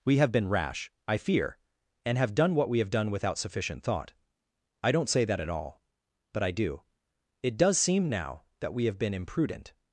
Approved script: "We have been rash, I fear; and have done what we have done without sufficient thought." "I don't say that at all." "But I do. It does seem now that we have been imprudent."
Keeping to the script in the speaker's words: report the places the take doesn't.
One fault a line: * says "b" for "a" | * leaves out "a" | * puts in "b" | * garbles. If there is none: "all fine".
all fine